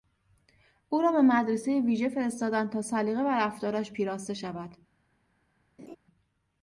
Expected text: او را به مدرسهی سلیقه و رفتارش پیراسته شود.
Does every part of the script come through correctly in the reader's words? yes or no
no